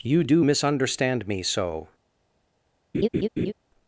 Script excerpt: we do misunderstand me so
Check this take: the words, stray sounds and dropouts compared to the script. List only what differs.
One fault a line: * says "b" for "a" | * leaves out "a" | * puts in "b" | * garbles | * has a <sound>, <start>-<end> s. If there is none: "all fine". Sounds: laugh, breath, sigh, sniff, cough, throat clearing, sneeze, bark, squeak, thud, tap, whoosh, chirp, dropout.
* says "you" for "we"
* has a laugh, 2.9-3.5 s